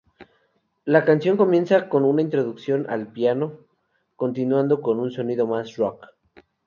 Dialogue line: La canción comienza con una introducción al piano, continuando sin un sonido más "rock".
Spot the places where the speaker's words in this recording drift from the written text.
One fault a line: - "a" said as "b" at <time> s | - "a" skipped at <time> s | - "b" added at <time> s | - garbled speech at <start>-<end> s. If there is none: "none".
- "sin" said as "con" at 4.8 s